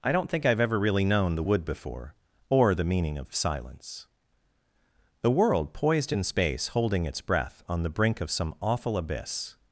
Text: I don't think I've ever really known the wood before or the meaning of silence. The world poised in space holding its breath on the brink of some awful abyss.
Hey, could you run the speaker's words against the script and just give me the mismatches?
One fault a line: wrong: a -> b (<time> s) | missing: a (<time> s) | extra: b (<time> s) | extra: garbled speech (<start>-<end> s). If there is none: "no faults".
no faults